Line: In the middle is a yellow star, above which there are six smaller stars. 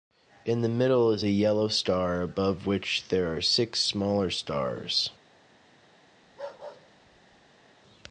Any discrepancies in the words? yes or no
no